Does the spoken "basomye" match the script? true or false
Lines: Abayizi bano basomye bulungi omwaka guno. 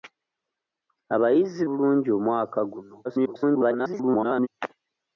false